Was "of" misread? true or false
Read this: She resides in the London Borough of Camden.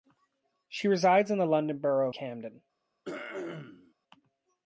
true